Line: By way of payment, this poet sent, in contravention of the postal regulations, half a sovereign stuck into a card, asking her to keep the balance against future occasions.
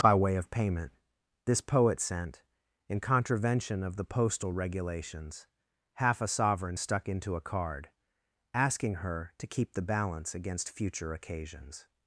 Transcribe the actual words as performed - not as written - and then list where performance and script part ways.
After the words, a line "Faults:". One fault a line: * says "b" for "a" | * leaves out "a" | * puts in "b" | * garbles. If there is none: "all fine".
By way of payment, this poet sent, in contravention of the postal regulations, half a sovereign stuck into a card, asking her to keep the balance against future occasions.
Faults:
all fine